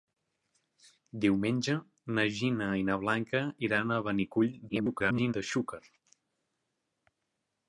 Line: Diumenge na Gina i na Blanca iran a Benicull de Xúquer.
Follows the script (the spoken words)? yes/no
no